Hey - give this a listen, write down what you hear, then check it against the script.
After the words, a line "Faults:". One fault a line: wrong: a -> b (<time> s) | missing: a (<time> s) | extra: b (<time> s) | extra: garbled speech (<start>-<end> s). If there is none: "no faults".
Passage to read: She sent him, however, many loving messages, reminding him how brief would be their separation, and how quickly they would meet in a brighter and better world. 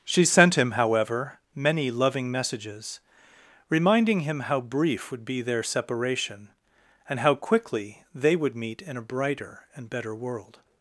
She sent him, however, many loving messages, reminding him how brief would be their separation, and how quickly they would meet in a brighter and better world.
Faults:
no faults